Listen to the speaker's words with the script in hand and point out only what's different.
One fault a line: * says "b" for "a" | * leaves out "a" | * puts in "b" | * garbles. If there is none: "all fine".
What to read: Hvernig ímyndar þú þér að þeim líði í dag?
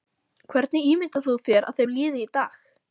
all fine